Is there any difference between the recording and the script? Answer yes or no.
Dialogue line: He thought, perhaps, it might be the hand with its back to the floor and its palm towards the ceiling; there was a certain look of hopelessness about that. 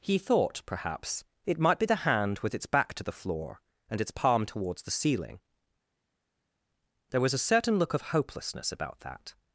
no